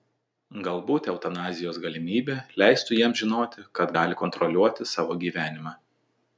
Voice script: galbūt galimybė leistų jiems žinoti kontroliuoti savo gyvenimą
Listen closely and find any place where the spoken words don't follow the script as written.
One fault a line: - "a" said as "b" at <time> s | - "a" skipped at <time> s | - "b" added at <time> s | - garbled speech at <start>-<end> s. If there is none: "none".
- "eutanazijos" added at 1.1 s
- "kad gali" added at 3.8 s